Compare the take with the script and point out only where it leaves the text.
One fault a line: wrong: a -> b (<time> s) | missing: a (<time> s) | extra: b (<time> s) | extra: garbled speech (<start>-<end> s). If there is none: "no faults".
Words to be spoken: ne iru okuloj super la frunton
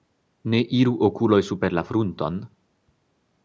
no faults